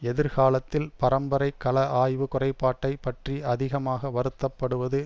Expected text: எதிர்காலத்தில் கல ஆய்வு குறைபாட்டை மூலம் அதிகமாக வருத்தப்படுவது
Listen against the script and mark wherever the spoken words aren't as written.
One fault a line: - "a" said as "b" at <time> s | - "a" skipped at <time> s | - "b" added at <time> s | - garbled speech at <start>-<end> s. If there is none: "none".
- "பரம்பரை" added at 1.0 s
- "மூலம்" said as "பற்றி" at 3.0 s